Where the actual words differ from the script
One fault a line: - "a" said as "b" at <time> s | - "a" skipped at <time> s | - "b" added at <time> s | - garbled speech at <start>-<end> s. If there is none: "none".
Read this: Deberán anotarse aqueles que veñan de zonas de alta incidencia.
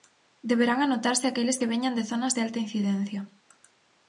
none